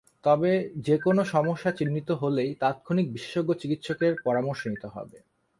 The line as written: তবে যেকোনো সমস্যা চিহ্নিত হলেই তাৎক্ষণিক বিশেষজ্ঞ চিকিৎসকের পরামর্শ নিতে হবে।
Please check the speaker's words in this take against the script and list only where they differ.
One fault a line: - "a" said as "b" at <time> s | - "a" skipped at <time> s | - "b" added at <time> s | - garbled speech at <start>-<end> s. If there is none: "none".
none